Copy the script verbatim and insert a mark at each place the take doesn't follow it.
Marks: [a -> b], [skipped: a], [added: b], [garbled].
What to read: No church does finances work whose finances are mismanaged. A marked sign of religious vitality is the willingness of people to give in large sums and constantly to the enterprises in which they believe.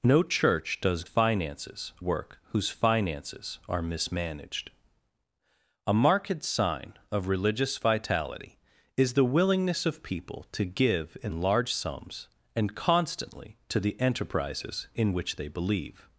No church does finances work whose finances are mismanaged. A marked sign of religious vitality is the willingness of people to give in large sums and constantly to the enterprises in which they believe.